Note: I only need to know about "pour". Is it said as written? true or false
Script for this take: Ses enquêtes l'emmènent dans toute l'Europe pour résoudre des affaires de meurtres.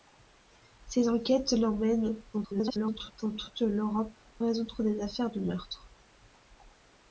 false